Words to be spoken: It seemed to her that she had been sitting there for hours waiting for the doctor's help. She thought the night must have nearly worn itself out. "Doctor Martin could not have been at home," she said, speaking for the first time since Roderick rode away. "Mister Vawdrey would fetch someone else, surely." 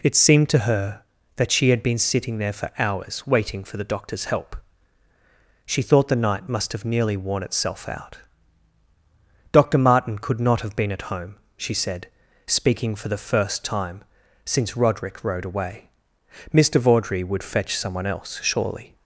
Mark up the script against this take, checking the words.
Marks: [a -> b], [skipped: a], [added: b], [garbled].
It seemed to her that she had been sitting there for hours waiting for the doctor's help. She thought the night must have nearly worn itself out. "Doctor Martin could not have been at home," she said, speaking for the first time since Roderick rode away. "Mister Vawdrey would fetch someone else, surely."